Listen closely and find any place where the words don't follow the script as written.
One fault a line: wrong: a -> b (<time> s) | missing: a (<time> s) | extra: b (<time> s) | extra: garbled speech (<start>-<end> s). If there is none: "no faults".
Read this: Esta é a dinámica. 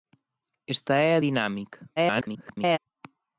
extra: garbled speech (2.0-2.8 s)